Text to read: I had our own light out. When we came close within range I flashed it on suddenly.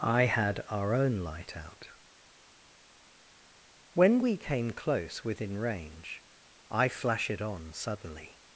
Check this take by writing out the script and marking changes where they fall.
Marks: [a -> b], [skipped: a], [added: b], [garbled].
I had our own light out. When we came close within range I [flashed -> flash] it on suddenly.